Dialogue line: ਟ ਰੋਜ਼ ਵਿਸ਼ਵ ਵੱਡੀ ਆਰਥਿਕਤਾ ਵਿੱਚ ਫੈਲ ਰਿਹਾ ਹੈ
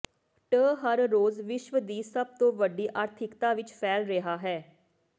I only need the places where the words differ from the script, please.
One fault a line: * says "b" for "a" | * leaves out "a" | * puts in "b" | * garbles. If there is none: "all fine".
* puts in "ਹਰ"
* puts in "ਦੀ ਸਭ ਤੋਂ"